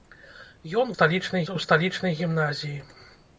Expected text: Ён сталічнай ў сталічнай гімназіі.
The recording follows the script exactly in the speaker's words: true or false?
true